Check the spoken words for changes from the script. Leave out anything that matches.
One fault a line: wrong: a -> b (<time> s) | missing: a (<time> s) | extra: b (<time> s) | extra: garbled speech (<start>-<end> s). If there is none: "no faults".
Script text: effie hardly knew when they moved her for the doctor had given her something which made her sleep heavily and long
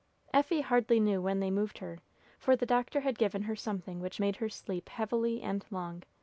no faults